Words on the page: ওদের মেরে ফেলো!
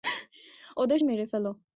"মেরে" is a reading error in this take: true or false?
false